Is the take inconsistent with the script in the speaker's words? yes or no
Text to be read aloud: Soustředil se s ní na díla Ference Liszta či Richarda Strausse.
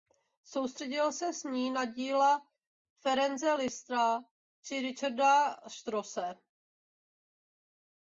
no